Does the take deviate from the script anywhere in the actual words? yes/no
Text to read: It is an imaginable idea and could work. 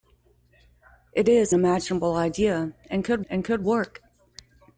yes